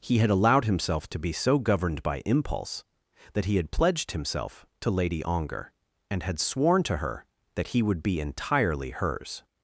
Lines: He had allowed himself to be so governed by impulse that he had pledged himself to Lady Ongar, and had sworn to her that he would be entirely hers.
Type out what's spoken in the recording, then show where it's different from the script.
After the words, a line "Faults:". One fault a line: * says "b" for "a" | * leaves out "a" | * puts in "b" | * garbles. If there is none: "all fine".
He had allowed himself to be so governed by impulse that he had pledged himself to Lady Ongar, and had sworn to her that he would be entirely hers.
Faults:
all fine